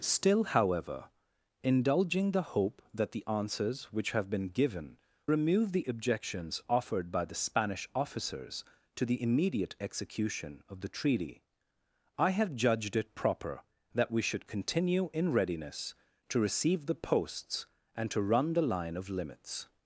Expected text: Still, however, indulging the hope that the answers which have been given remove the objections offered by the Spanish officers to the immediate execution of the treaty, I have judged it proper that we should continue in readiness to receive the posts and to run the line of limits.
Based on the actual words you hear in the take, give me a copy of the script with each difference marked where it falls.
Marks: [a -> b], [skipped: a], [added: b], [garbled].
Still, however, indulging the hope that the answers which have been given remove the objections offered by the Spanish officers to the immediate execution of the treaty, I have judged it proper that we should continue in readiness to receive the posts and to run the line of limits.